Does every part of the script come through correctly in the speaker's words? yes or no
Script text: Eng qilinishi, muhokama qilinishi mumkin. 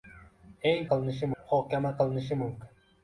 yes